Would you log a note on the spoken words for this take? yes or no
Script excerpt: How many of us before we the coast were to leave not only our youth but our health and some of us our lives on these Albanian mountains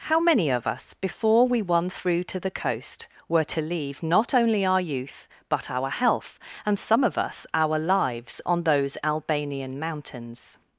yes